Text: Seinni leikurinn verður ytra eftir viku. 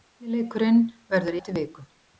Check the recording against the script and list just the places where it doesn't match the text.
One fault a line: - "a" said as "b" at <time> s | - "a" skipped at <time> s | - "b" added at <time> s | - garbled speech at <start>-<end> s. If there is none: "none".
- "ytra" skipped at 1.4 s